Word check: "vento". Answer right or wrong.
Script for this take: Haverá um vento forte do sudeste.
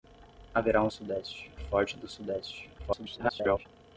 wrong